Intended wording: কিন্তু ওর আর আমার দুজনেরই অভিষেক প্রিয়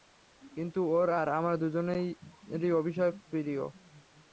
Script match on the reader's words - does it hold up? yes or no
yes